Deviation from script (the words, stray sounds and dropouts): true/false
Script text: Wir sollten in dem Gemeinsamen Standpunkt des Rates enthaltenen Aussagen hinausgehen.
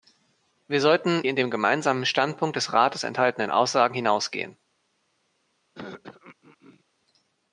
true